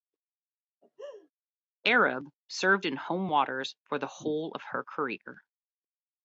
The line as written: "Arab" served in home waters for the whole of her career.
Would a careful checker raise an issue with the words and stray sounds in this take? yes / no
yes